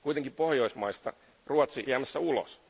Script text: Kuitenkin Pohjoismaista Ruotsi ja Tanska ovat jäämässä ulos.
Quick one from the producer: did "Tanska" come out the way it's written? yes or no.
no